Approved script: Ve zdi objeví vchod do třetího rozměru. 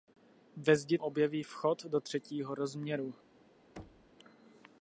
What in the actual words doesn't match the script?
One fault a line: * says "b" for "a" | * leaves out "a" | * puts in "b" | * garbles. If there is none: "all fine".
all fine